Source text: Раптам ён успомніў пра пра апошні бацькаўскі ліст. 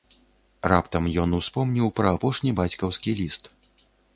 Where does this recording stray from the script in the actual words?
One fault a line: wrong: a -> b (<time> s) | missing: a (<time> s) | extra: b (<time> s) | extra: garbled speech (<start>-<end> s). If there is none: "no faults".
missing: пра (2.1 s)